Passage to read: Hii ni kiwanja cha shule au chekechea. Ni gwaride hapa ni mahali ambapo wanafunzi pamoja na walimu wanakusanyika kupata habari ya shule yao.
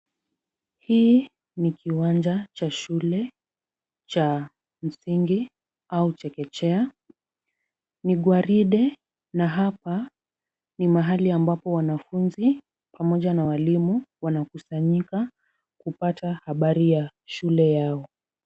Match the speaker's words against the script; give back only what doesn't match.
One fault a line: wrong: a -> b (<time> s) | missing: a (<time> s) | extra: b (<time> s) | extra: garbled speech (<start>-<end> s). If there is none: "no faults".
extra: cha msingi (4.1 s)
extra: na (9.3 s)